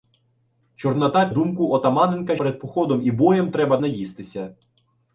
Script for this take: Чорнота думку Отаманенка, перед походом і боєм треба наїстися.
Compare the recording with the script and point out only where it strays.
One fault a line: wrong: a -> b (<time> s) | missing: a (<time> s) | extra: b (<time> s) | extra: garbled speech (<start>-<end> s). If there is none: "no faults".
no faults